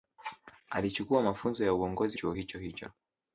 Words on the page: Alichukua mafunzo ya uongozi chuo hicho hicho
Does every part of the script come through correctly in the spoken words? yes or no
yes